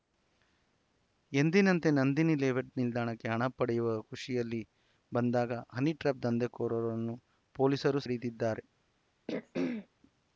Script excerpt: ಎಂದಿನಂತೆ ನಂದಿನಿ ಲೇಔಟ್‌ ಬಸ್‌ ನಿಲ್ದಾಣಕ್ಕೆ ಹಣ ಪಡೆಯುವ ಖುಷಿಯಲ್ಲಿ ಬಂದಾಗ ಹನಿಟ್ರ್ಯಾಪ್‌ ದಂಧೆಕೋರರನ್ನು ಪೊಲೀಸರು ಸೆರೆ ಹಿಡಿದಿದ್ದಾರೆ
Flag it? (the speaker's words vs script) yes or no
yes